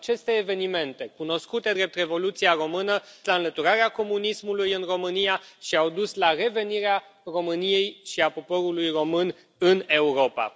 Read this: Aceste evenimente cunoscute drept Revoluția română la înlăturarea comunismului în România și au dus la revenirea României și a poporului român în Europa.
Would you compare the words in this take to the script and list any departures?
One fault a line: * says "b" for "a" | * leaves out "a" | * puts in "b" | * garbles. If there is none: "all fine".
all fine